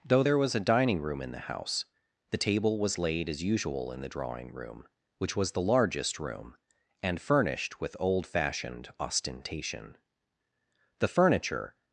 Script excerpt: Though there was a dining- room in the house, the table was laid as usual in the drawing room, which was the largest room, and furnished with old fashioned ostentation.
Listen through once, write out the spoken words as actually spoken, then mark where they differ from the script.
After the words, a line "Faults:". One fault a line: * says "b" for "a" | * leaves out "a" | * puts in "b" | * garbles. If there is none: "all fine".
Though there was a dining- room in the house, the table was laid as usual in the drawing room, which was the largest room, and furnished with old fashioned ostentation. The furniture
Faults:
* puts in "The furniture"